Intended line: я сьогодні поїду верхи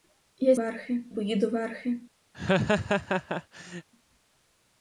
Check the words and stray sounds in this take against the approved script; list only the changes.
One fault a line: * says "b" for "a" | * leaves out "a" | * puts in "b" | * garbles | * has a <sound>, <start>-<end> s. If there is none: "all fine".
* says "верхи" for "сьогодні"
* has a laugh, 2.3-3.9 s